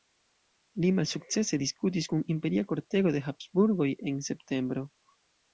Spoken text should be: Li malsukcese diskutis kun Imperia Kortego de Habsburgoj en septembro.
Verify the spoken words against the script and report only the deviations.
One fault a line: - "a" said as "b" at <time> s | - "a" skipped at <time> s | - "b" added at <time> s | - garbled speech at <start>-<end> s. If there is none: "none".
none